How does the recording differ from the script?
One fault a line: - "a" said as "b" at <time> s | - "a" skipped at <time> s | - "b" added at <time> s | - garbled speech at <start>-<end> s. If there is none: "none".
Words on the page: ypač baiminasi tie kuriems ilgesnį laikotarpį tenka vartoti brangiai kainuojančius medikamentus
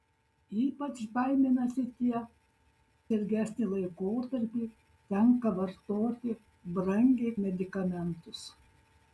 - "kuriems" skipped at 2.2 s
- "kainuojančius" skipped at 7.3 s